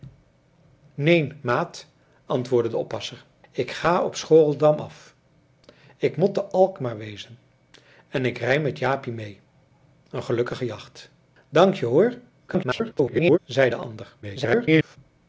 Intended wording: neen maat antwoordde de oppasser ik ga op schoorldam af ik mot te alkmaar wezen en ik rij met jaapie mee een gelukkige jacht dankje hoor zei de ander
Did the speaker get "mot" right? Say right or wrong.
right